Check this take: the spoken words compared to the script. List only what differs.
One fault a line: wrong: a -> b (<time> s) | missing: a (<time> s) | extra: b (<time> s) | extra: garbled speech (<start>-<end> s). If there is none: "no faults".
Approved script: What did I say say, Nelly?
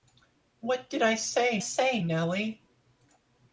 no faults